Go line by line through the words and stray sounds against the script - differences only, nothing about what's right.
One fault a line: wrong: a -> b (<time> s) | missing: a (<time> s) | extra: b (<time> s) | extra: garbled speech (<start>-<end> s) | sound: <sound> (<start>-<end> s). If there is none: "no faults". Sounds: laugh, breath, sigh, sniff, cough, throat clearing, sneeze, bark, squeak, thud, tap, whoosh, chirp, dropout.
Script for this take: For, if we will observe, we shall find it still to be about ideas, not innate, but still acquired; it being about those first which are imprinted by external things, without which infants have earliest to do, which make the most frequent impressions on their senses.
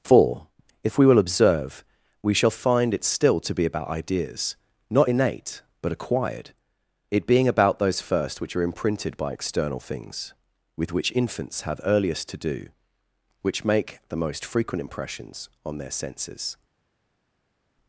missing: still (5.9 s)
wrong: without -> with (10.8 s)